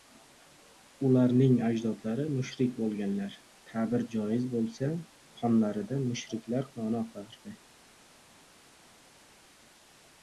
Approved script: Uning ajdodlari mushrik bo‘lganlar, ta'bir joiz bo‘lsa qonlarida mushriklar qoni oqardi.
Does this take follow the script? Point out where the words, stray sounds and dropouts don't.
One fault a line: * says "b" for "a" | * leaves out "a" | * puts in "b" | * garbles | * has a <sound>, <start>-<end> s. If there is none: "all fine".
* says "Ularning" for "Uning"